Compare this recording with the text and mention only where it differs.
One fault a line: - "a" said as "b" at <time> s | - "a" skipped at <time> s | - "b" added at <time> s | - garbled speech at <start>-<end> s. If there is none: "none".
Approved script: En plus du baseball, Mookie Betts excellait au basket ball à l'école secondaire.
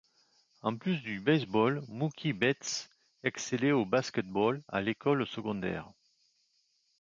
none